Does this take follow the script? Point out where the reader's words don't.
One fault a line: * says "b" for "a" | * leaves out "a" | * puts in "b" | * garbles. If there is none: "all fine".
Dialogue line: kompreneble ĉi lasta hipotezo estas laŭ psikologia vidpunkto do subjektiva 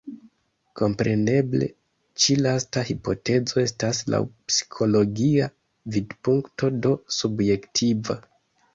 all fine